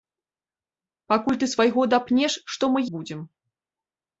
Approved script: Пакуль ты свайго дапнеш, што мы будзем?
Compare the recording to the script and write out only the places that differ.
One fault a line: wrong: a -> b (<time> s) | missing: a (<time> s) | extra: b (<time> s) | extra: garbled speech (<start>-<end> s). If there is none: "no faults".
no faults